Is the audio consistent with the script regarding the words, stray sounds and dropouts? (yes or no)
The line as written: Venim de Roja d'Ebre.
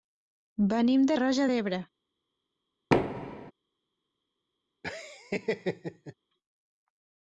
no